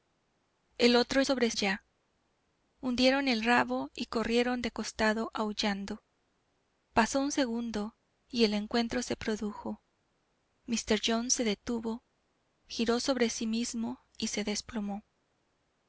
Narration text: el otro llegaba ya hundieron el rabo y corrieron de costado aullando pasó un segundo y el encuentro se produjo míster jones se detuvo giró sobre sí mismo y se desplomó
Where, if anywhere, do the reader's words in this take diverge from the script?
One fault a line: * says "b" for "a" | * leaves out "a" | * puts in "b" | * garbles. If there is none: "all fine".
* says "sobre" for "llegaba"